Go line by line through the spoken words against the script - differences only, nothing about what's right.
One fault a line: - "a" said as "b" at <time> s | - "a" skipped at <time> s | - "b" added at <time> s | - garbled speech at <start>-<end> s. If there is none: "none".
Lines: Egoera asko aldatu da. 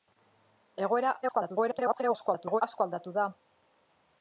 - garbled speech at 1.2-2.6 s